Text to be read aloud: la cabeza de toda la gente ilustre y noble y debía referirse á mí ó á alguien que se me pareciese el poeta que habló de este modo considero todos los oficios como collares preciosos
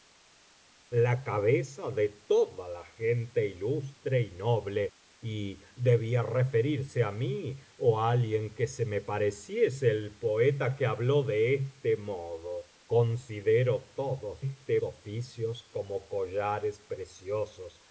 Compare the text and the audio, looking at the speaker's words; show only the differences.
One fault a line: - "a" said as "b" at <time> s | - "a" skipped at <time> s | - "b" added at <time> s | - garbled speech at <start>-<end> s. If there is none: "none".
- "los" said as "este" at 14.4 s